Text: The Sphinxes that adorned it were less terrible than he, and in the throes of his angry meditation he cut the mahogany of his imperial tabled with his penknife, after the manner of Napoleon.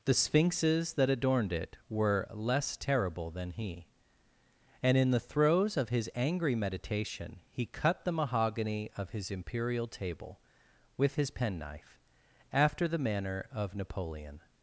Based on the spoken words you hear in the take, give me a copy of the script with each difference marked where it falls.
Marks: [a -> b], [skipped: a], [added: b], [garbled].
The Sphinxes that adorned it were less terrible than he, and in the throes of his angry meditation he cut the mahogany of his imperial [tabled -> table] with his penknife, after the manner of Napoleon.